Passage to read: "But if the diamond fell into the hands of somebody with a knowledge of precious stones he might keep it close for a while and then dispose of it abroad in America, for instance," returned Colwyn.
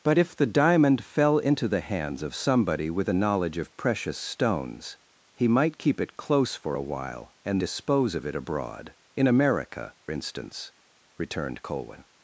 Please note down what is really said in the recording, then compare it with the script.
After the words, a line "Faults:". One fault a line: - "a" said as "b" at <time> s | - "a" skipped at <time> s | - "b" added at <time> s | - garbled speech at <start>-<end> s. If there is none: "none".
"But if the diamond fell into the hands of somebody with a knowledge of precious stones he might keep it close for a while and dispose of it abroad in America, instance," returned Colwyn.
Faults:
- "then" skipped at 7.6 s
- "for" skipped at 9.9 s